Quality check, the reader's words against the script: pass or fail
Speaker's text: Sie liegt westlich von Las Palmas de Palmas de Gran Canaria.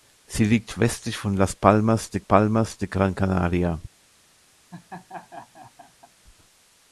pass